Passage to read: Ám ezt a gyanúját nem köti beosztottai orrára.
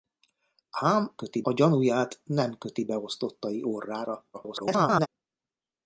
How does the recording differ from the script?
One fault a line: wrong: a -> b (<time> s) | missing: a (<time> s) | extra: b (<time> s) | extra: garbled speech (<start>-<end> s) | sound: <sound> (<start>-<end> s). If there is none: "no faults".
wrong: ezt -> köti (1.2 s)
extra: garbled speech (4.3-5.1 s)